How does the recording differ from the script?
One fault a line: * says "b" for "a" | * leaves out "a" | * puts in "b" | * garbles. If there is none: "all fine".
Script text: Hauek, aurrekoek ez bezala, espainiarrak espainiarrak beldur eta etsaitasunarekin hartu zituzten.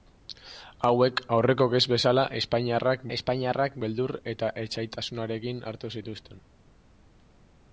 all fine